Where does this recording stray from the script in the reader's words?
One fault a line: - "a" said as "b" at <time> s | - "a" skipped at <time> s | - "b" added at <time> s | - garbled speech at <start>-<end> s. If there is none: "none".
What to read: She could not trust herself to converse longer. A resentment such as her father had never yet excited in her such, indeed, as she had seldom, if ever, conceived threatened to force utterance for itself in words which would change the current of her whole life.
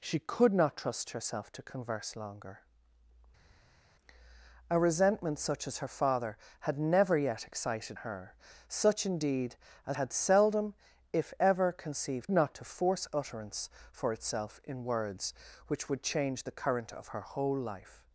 - "in" skipped at 8.0 s
- "she" skipped at 10.0 s
- "threatened" said as "not" at 12.3 s